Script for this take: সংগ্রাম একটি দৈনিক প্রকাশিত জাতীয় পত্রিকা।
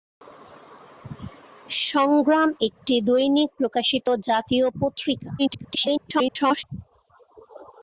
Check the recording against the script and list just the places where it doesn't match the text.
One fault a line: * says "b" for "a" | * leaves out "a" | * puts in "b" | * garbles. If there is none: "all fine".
* garbles